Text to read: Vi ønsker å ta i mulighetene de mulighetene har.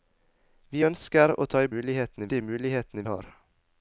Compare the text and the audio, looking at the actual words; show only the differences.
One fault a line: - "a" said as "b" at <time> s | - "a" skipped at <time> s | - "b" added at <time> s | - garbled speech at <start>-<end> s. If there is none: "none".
none